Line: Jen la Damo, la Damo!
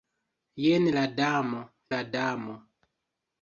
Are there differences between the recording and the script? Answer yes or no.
no